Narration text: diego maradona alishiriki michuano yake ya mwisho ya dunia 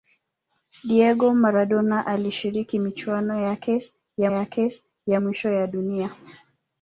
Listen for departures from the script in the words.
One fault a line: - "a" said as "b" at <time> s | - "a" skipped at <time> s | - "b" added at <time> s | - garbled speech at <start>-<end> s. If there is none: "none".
- "yake ya" added at 4.3 s